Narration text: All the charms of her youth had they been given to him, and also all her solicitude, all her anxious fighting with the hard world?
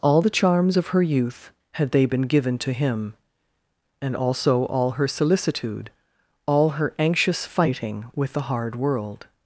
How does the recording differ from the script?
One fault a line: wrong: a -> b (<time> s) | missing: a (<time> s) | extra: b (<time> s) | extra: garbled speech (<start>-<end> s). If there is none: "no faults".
no faults